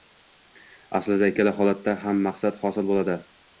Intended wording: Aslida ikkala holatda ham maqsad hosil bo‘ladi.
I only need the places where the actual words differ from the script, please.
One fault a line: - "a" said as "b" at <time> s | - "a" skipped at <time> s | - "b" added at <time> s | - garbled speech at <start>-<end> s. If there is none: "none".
none